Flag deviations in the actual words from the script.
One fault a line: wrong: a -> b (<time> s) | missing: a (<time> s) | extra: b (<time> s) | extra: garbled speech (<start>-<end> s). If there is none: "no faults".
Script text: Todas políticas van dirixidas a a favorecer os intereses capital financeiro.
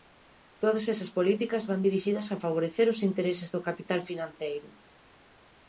extra: esas (0.9 s)
missing: a (2.4 s)
extra: do (3.5 s)